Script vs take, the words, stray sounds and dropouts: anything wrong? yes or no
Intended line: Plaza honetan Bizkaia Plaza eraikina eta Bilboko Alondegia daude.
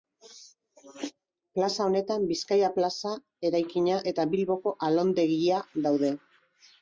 no